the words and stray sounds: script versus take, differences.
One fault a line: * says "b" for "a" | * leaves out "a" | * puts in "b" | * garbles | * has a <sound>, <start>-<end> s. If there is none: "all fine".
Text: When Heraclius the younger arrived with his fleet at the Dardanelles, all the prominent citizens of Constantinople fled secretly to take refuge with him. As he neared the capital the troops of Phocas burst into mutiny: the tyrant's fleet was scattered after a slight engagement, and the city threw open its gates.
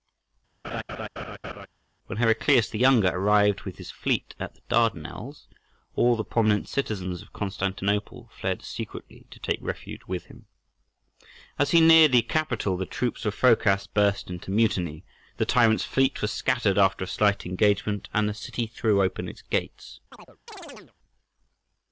* has a laugh, 0.6-1.7 s
* has a chirp, 20.1-20.9 s